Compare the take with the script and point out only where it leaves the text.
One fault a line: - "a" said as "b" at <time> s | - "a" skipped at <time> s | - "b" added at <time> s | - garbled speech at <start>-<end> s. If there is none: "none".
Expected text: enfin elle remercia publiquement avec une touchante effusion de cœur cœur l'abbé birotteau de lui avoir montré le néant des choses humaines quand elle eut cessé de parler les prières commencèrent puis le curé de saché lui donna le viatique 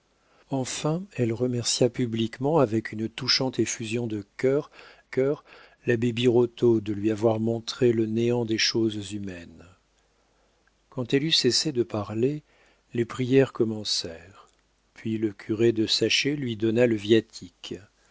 none